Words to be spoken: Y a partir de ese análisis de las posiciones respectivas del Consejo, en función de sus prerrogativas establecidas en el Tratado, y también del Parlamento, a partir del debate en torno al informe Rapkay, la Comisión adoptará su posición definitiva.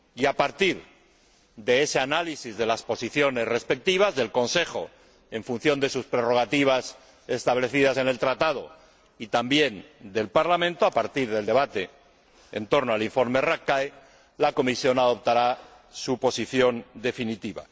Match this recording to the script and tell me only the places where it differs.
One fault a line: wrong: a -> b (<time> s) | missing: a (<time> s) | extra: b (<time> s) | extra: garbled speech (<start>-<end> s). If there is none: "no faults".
no faults